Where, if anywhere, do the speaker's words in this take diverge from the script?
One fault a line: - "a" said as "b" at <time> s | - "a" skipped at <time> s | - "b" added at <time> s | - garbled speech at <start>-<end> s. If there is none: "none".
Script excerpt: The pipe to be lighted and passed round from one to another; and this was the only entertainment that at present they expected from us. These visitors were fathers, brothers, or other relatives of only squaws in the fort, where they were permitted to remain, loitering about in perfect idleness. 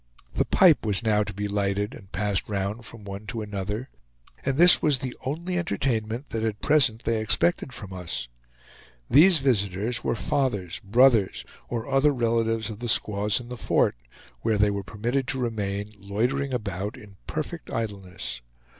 - "was now" added at 0.8 s
- "only" said as "the" at 12.8 s